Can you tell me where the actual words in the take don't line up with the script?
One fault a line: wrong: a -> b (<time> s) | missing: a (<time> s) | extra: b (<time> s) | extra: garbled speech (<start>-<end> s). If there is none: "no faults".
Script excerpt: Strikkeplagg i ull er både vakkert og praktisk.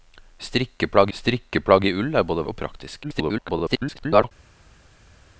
extra: strikkeplagg (1.1 s)
missing: vakkert (2.5 s)
extra: garbled speech (3.0-4.3 s)